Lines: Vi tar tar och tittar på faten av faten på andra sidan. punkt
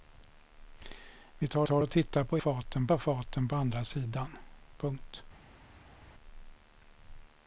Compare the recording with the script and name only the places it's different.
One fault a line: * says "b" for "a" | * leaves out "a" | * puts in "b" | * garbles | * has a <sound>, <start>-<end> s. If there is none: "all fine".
all fine